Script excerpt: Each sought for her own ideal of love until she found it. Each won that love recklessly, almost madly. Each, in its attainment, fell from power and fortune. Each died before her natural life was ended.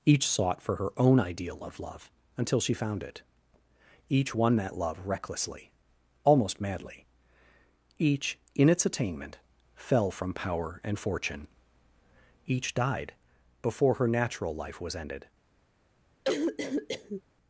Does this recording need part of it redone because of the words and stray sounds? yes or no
yes